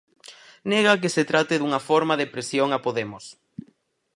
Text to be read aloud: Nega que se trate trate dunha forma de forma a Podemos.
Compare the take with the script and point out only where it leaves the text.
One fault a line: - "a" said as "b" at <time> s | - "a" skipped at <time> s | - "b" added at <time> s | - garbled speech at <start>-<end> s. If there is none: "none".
- "trate" skipped at 1.6 s
- "forma" said as "presión" at 2.3 s